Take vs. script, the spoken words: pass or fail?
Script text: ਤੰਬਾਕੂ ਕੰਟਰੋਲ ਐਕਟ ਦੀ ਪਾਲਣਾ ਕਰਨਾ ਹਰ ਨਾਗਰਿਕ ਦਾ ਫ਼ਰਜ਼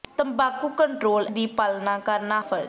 fail